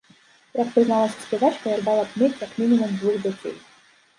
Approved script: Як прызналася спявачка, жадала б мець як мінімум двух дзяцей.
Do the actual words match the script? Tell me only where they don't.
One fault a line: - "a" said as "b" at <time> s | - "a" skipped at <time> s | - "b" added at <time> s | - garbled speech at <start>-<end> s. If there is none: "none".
none